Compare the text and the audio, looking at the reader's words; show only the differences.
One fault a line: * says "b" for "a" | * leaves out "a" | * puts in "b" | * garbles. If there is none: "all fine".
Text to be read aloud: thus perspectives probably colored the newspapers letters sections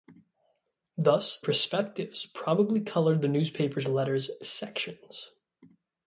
all fine